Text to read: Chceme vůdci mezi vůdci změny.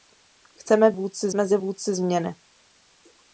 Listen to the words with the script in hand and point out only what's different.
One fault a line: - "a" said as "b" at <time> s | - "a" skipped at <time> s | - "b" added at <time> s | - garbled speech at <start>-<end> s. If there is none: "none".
none